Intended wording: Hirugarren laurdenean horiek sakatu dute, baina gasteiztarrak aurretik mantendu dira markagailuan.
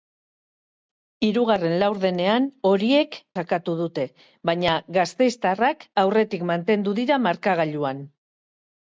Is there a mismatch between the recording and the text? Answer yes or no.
no